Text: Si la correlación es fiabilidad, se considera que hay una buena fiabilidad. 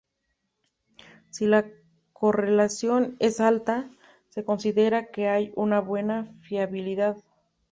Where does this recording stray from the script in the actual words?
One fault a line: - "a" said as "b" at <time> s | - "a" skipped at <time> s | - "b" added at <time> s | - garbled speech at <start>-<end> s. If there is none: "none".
- "fiabilidad" said as "alta" at 3.4 s